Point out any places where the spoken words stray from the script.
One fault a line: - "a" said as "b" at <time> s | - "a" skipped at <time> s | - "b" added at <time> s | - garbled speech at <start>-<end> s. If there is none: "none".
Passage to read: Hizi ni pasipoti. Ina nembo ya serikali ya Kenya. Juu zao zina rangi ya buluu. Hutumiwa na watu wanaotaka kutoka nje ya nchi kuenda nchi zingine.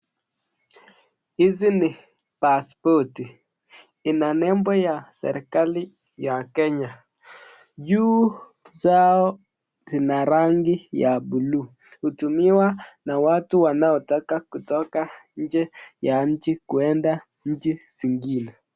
none